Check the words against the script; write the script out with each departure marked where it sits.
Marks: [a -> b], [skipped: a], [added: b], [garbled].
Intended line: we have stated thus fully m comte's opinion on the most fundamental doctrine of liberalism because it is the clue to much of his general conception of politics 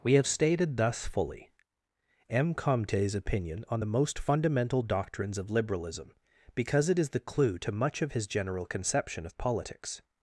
we have stated thus fully m comte's opinion on the most fundamental [doctrine -> doctrines] of liberalism because it is the clue to much of his general conception of politics